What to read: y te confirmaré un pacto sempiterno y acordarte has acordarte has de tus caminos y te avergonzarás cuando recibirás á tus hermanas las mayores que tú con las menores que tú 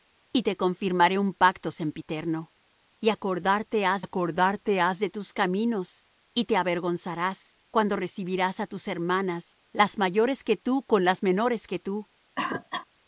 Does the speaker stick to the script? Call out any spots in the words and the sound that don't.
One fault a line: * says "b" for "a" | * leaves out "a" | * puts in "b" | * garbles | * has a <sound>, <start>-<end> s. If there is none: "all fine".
* has a cough, 12.4-12.9 s